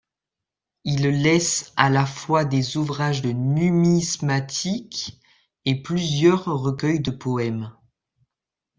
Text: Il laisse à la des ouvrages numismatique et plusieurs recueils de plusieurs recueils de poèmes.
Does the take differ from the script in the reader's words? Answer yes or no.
yes